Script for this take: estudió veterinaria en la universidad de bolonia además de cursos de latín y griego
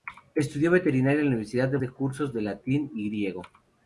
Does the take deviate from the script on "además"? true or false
true